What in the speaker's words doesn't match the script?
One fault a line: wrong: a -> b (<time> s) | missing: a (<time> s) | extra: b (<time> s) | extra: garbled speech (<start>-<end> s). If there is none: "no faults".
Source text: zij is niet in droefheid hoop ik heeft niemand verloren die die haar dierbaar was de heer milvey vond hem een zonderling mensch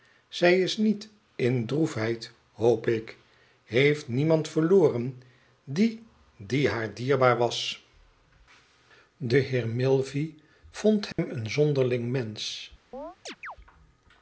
no faults